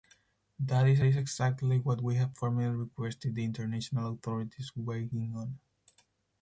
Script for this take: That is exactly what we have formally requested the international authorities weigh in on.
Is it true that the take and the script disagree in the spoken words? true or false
true